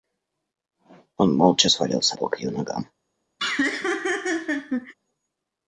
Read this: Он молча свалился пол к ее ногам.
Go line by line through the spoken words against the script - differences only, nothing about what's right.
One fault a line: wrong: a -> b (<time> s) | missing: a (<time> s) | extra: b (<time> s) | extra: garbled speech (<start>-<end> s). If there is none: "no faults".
no faults